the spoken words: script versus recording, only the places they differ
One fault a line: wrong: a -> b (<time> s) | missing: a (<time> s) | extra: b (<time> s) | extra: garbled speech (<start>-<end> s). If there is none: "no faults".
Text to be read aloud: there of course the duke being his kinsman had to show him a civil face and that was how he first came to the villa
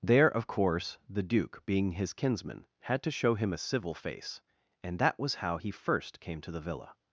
no faults